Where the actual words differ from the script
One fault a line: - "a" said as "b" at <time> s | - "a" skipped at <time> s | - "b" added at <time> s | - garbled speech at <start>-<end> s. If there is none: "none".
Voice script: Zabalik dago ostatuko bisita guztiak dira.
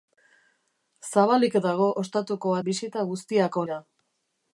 none